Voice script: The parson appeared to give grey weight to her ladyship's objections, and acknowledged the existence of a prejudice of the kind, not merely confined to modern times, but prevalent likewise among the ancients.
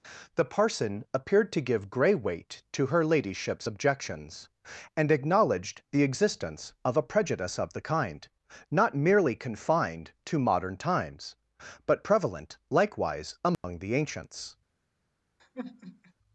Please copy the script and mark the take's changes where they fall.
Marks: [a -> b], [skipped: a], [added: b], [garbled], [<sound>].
The parson appeared to give grey weight to her ladyship's objections, and acknowledged the existence of a prejudice of the kind, not merely confined to modern times, but prevalent likewise among [dropout] the ancients. [sigh]